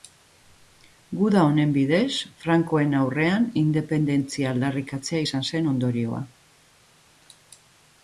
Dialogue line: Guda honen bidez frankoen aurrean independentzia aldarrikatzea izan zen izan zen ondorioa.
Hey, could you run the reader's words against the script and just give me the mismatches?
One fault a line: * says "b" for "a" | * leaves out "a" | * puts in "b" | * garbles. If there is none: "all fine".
* leaves out "izan zen"